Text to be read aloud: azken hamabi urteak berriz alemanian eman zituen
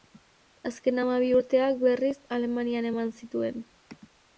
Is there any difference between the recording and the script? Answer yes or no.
no